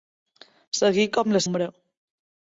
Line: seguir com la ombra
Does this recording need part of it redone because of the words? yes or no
no